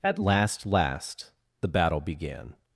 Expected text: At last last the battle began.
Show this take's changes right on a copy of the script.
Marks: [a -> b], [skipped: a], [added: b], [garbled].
At last last the battle began.